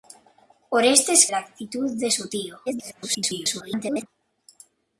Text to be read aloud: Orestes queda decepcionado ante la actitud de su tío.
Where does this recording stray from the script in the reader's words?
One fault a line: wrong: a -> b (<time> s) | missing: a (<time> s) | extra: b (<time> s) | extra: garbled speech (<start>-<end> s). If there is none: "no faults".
missing: queda decepcionado ante (1.3 s)
extra: garbled speech (2.7-4.1 s)